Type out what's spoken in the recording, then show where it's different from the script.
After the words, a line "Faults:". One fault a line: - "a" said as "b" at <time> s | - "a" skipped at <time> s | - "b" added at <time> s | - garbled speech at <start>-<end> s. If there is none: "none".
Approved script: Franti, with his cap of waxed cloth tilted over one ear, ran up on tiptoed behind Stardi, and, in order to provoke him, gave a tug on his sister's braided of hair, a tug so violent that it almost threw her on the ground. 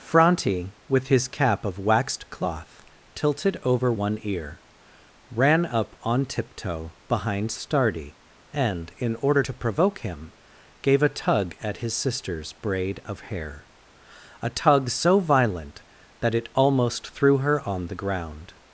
Franti, with his cap of waxed cloth tilted over one ear, ran up on tiptoe behind Stardi, and, in order to provoke him, gave a tug at his sister's braid of hair, a tug so violent that it almost threw her on the ground.
Faults:
- "tiptoed" said as "tiptoe" at 6.2 s
- "on" said as "at" at 11.6 s
- "braided" said as "braid" at 12.5 s